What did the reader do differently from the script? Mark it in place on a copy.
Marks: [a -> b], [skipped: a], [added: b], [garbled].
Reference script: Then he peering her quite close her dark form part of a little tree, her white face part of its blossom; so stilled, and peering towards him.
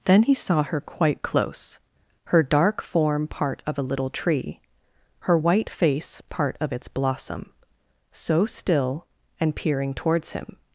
Then he [peering -> saw] her quite close her dark form part of a little tree, her white face part of its blossom; so [stilled, -> still] and peering towards him.